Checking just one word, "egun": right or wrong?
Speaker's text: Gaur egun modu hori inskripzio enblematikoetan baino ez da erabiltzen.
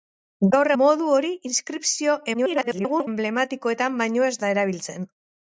wrong